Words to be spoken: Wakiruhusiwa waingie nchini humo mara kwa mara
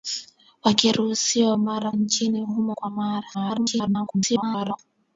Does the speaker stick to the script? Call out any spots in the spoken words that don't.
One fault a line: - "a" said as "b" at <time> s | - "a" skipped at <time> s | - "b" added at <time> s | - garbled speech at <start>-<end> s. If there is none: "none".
- "waingie" said as "mara" at 1.6 s
- "mara" skipped at 2.8 s
- garbled speech at 3.3-4.8 s